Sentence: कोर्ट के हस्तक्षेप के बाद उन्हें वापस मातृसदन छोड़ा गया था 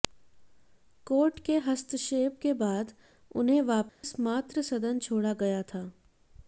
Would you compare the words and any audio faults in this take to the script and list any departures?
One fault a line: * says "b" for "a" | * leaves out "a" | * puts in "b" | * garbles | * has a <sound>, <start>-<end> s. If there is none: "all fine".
* has a dropout, 3.9-4.0 s